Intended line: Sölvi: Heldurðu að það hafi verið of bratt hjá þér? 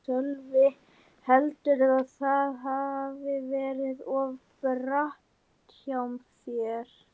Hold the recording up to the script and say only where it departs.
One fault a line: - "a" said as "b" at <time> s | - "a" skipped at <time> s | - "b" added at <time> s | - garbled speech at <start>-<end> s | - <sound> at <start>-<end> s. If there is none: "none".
none